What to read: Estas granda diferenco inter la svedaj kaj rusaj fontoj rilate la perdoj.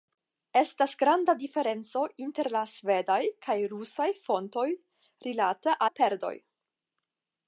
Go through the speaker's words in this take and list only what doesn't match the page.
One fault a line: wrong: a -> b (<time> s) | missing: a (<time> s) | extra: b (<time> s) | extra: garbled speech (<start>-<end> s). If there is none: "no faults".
no faults